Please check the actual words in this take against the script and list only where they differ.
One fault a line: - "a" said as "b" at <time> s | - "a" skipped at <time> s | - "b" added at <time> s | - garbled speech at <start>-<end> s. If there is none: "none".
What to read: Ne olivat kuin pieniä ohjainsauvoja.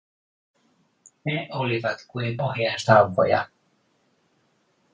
- "pieniä" skipped at 2.4 s